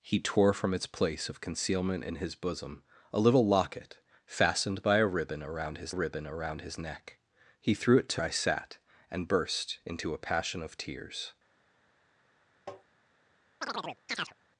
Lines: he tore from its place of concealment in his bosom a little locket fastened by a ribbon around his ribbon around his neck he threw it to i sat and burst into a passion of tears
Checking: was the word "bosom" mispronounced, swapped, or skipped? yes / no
no